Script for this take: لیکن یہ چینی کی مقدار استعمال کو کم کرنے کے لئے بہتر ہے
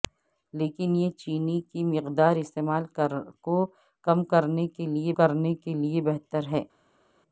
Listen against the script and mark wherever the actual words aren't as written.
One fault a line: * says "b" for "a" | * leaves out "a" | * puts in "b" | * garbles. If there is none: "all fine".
* puts in "کرنے کے لئے"